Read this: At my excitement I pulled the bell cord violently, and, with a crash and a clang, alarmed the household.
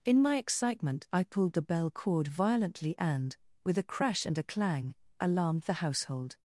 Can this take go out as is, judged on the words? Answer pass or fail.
fail